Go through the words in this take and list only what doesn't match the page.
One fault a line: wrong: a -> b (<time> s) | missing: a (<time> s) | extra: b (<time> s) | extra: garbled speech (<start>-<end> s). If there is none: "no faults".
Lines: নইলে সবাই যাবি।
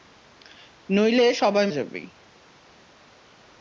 no faults